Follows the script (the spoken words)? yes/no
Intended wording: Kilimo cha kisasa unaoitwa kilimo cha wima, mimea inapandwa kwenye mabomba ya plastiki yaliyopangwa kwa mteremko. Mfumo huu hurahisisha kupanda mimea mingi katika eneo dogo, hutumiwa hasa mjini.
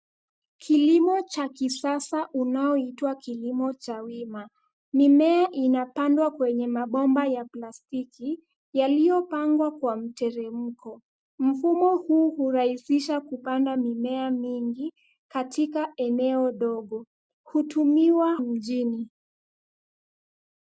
no